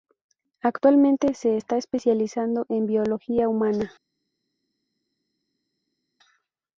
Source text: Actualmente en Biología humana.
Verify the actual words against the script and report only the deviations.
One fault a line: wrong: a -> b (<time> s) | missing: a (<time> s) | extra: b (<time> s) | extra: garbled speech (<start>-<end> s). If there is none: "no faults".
extra: se está especializando (1.4 s)